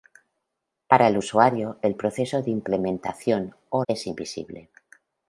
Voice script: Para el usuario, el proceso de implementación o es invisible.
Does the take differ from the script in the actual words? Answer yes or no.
no